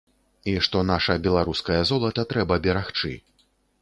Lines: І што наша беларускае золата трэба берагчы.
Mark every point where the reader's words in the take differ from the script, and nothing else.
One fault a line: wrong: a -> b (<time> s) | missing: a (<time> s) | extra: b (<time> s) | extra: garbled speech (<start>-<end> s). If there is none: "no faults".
no faults